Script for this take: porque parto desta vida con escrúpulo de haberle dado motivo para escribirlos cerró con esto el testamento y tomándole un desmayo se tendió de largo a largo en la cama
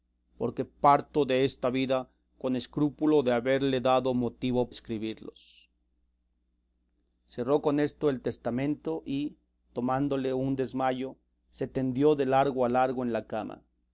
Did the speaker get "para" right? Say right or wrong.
wrong